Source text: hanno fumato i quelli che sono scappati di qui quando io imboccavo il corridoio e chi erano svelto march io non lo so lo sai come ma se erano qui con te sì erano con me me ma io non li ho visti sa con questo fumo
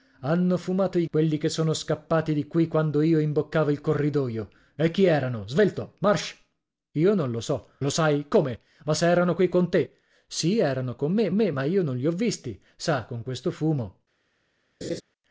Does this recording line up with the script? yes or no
yes